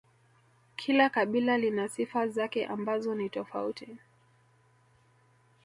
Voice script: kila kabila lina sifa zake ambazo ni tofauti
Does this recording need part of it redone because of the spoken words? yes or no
no